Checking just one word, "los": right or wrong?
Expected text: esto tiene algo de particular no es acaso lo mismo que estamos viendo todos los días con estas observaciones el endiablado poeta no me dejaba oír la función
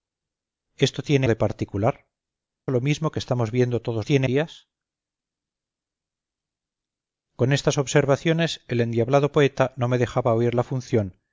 wrong